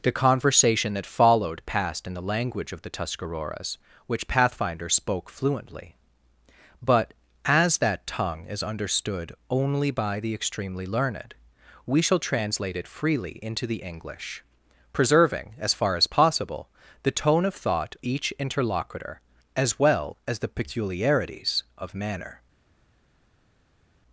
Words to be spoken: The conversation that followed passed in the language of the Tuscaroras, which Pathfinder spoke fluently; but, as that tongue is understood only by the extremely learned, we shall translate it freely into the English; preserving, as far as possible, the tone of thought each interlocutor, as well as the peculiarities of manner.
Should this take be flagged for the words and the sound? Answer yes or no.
no